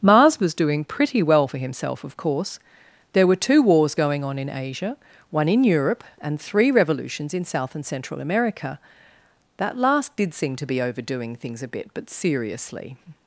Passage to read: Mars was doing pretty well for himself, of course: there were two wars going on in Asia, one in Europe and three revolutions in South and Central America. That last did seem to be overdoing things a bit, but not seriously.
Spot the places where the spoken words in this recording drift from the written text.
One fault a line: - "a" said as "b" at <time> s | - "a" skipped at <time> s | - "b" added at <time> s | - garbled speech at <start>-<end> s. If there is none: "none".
- "not" skipped at 12.1 s